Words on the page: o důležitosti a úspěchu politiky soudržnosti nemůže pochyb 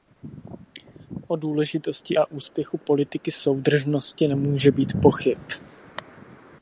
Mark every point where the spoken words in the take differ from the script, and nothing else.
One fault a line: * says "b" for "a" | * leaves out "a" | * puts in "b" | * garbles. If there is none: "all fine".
* puts in "být"